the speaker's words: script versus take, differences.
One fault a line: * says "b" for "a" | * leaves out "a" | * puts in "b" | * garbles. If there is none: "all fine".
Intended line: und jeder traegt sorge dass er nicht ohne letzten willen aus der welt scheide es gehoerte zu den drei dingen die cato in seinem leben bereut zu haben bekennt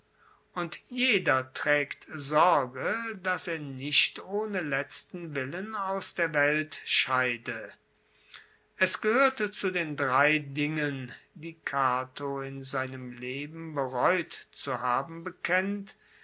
all fine